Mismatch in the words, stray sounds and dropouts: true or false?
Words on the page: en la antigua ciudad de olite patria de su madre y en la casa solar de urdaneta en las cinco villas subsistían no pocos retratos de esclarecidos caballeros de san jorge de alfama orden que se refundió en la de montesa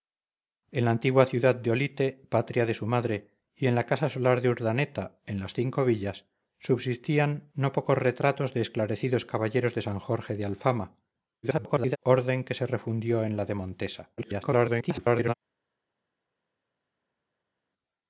true